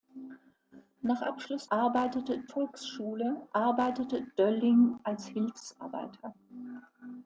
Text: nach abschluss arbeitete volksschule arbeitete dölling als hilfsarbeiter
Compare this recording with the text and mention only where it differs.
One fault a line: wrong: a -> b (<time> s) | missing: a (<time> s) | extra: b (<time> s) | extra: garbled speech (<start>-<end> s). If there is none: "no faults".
no faults